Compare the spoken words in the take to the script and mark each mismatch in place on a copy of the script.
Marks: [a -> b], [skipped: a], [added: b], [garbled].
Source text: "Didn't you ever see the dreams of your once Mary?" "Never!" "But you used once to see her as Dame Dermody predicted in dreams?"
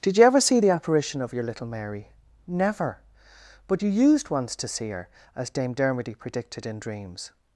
["Didn't -> Did] you ever see the [dreams -> apparition] of your [once -> little] Mary?" "Never!" "But you used once to see her as Dame Dermody predicted in dreams?"